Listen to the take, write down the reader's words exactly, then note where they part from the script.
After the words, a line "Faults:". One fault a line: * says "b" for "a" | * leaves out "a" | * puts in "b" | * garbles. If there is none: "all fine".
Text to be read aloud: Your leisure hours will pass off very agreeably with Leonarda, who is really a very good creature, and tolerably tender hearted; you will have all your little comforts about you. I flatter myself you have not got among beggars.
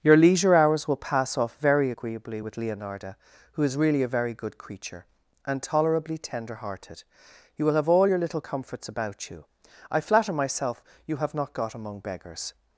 Your leisure hours will pass off very agreeably with Leonarda, who is really a very good creature, and tolerably tender hearted; you will have all your little comforts about you. I flatter myself you have not got among beggars.
Faults:
all fine